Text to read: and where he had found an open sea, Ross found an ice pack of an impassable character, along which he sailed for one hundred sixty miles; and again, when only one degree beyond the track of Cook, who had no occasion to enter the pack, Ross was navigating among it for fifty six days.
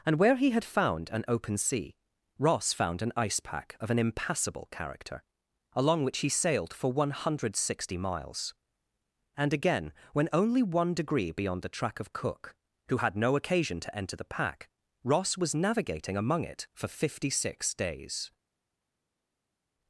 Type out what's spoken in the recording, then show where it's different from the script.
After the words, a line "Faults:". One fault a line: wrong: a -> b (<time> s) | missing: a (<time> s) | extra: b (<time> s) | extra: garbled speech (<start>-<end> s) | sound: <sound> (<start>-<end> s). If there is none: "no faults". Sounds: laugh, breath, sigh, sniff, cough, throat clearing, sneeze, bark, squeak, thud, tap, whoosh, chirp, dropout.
and where he had found an open sea, Ross found an ice pack of an impassable character, along which he sailed for one hundred sixty miles; and again, when only one degree beyond the track of Cook, who had no occasion to enter the pack, Ross was navigating among it for fifty six days.
Faults:
no faults